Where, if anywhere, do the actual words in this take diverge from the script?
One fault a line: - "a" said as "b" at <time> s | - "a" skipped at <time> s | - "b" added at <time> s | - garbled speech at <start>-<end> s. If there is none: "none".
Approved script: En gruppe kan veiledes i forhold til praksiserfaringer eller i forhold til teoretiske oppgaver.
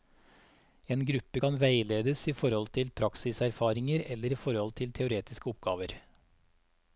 none